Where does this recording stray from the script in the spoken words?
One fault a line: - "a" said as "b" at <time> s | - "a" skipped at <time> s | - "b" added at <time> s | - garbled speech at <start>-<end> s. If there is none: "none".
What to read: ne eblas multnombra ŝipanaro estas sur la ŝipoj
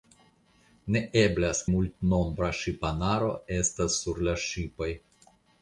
none